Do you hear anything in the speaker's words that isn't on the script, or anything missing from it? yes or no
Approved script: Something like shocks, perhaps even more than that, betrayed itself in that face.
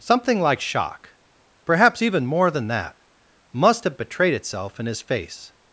yes